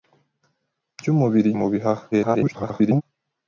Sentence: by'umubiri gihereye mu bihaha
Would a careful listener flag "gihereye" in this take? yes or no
yes